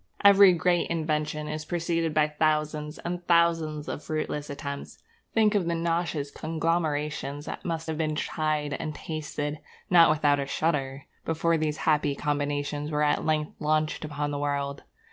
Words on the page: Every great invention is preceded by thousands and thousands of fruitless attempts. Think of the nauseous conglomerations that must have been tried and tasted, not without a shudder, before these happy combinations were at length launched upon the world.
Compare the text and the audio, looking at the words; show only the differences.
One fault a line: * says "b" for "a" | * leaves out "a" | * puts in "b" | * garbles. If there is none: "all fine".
all fine